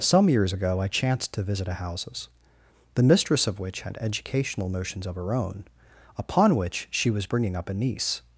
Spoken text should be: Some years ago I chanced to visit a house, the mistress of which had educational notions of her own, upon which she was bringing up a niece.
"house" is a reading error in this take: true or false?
true